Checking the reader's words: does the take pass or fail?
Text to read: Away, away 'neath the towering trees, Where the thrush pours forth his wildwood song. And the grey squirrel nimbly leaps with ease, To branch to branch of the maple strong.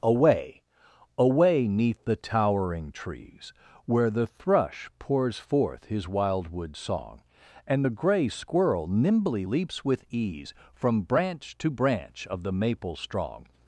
fail